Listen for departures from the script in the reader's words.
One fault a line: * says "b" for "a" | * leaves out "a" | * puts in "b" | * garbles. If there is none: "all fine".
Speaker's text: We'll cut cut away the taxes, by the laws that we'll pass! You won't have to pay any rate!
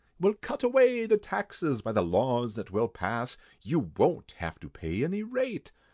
* leaves out "cut"